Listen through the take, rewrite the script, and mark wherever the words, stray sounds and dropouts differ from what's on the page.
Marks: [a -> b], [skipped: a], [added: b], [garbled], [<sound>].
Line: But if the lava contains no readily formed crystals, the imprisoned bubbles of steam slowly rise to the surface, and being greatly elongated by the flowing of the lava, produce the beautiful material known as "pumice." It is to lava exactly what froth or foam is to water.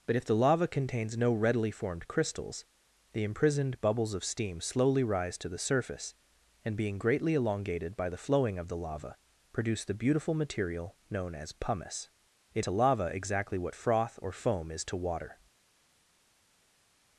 But if the lava contains no readily formed crystals, the imprisoned bubbles of steam slowly rise to the surface, and being greatly elongated by the flowing of the lava, produce the beautiful material known as "pumice." It [skipped: is] to lava exactly what froth or foam is to water.